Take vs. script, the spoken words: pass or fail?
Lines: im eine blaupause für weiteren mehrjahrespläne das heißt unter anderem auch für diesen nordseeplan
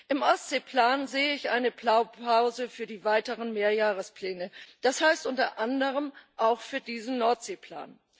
fail